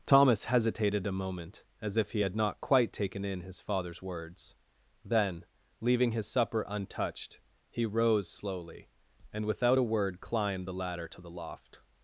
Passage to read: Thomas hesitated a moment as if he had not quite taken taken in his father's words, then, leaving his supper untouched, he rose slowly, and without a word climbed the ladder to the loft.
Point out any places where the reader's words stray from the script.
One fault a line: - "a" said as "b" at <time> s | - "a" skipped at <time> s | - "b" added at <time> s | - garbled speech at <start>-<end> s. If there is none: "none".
- "taken" skipped at 3.2 s